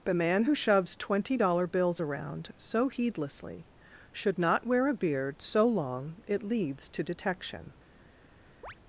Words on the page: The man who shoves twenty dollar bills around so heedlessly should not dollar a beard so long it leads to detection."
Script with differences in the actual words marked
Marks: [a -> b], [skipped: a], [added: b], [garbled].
The man who shoves twenty dollar bills around so heedlessly should not [dollar -> wear] a beard so long it leads to detection."